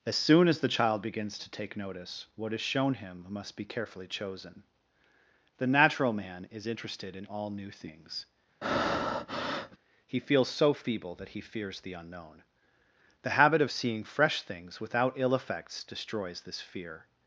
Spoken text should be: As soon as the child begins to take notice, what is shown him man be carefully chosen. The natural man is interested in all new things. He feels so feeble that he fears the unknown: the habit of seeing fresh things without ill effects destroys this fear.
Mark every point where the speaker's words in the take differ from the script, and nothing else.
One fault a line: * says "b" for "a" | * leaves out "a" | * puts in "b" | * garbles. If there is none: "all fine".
* says "must" for "man"